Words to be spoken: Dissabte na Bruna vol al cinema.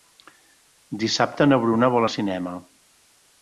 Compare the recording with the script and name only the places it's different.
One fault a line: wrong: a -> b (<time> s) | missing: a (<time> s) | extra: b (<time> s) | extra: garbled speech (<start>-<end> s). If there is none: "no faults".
no faults